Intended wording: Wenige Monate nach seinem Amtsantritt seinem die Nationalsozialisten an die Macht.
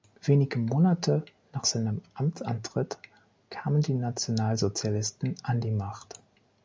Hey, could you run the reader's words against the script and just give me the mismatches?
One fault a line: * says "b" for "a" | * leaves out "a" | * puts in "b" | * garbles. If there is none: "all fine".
* says "kamen" for "seinem"